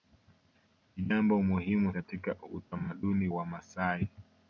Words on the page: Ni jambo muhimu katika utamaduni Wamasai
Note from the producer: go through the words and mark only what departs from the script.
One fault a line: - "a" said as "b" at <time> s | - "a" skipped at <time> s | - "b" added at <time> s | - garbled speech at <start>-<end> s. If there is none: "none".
none